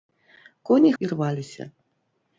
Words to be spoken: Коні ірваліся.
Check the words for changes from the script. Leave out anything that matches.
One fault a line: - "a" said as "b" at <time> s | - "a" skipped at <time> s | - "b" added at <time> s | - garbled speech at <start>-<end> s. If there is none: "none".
none